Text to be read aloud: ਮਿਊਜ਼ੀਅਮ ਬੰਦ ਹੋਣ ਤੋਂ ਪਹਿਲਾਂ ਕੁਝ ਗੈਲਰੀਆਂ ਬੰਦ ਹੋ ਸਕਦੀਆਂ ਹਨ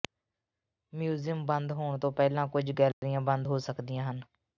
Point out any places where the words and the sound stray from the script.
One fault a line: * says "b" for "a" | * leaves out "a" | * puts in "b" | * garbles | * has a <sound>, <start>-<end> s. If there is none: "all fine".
* has a dropout, 2.9-3.0 s